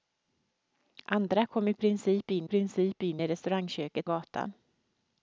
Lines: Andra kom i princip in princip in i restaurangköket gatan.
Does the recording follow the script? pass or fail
pass